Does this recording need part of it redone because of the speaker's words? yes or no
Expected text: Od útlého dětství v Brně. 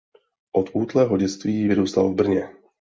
yes